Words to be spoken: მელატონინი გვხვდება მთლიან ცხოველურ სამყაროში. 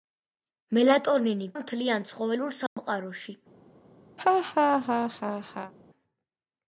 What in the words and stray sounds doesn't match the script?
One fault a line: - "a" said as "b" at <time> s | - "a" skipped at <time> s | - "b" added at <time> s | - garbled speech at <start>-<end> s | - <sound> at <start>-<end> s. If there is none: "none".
- "გვხვდება" skipped at 1.5 s
- dropout at 2.7-2.8 s
- laugh at 4.2-5.7 s